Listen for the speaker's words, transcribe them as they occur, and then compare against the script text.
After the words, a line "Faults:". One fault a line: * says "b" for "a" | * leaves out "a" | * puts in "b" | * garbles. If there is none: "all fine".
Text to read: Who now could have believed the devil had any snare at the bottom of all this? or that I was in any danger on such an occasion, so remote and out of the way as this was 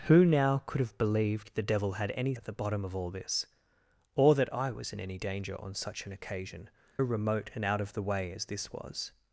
Who now could have believed the devil had any at the bottom of all this? or that I was in any danger on such an occasion, remote and out of the way as this was
Faults:
* leaves out "snare"
* leaves out "so"